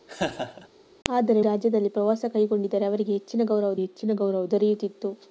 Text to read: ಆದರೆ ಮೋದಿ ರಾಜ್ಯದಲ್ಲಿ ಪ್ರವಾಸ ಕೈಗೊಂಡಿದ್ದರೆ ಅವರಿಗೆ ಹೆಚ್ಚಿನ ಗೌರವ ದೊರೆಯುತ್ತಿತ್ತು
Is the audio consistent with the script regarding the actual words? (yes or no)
no